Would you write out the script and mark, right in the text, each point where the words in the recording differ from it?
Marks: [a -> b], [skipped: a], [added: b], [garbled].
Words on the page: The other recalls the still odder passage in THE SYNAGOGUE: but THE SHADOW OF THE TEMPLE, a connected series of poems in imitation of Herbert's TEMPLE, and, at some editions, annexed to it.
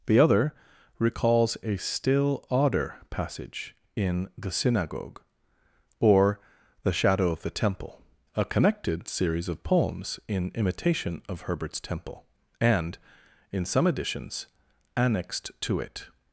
The other recalls [the -> a] still odder passage in THE SYNAGOGUE: [but -> or] THE SHADOW OF THE TEMPLE, a connected series of poems in imitation of Herbert's TEMPLE, and, [at -> in] some editions, annexed to it.